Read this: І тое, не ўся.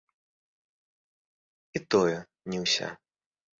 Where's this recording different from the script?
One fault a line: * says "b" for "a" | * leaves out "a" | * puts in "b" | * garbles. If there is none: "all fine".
all fine